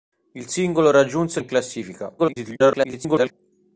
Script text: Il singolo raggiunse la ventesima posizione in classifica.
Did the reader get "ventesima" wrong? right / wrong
wrong